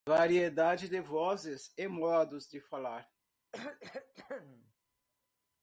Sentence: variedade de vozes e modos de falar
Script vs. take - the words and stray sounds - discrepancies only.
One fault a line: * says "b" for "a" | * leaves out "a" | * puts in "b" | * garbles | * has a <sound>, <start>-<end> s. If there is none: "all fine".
* has a cough, 3.5-4.7 s